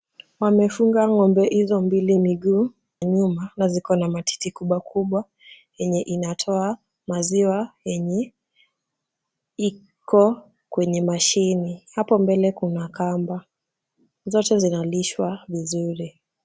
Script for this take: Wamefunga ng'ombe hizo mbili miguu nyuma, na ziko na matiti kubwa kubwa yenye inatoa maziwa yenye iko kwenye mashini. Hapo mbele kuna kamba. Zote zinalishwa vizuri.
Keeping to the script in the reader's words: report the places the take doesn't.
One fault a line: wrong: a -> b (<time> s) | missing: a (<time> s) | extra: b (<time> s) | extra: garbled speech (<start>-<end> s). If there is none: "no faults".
no faults